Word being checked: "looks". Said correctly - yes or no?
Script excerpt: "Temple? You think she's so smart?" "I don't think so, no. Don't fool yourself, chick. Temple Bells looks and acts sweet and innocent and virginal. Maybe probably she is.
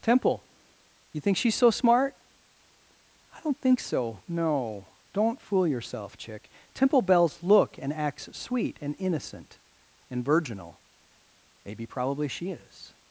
no